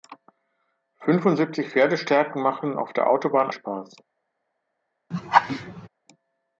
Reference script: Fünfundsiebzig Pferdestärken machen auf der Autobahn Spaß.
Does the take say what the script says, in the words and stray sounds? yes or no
no